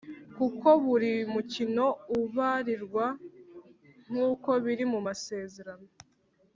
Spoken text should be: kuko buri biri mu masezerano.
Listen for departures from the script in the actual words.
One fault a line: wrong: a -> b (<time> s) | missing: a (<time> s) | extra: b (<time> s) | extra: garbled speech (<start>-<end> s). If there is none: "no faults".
extra: mukino ubarirwa nk'uko (1.3 s)